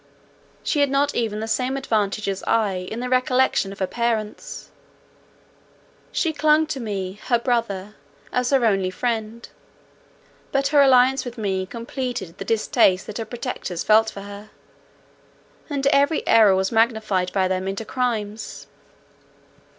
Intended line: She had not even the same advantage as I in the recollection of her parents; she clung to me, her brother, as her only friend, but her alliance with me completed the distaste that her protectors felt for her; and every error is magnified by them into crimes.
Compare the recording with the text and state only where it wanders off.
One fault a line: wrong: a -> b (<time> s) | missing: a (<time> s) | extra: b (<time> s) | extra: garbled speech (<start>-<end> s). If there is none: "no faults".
wrong: is -> was (16.6 s)